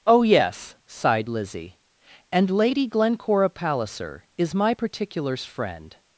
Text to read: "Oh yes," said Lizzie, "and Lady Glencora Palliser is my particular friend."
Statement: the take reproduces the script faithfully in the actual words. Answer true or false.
false